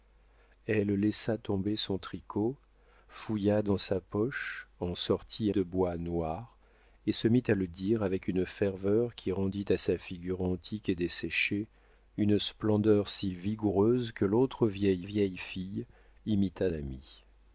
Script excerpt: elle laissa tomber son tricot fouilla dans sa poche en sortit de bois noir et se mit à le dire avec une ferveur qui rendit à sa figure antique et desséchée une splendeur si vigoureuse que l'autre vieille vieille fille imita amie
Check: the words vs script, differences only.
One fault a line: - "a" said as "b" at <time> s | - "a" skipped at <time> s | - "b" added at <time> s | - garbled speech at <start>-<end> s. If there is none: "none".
none